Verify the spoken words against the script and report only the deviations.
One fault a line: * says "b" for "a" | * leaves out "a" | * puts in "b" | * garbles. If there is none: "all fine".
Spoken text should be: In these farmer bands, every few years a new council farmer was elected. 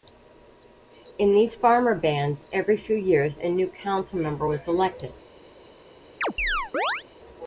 * says "member" for "farmer"